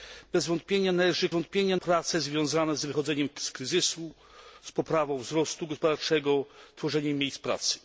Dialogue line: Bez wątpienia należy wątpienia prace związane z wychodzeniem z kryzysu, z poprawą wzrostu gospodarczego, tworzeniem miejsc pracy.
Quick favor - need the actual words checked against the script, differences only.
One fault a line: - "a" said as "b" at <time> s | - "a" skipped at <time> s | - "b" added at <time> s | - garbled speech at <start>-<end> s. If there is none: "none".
none